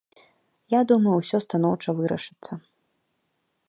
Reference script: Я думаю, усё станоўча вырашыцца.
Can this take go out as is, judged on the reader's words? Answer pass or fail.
pass